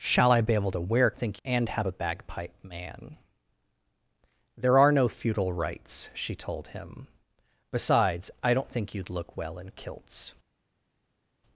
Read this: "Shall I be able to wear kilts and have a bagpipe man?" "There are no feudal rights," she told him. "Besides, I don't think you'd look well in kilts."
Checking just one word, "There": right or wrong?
right